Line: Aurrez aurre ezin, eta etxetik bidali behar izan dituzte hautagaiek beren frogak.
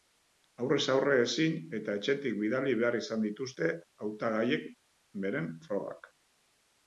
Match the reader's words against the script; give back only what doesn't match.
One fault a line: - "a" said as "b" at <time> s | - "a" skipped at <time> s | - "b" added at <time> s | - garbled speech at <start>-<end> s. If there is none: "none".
none